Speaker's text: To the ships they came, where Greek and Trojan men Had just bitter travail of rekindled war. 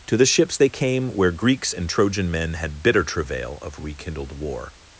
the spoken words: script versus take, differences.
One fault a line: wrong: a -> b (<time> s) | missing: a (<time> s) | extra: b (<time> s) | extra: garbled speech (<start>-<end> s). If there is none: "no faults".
wrong: Greek -> Greeks (1.3 s)
missing: just (2.8 s)